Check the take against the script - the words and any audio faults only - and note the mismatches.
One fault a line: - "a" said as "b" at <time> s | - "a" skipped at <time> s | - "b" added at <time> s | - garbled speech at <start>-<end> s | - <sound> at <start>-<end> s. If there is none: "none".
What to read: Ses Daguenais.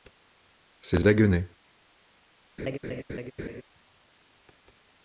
- laugh at 2.6-3.6 s